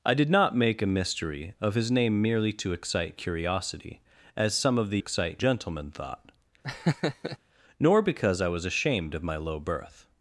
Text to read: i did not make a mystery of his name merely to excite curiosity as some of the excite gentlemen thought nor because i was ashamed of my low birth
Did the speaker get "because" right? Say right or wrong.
right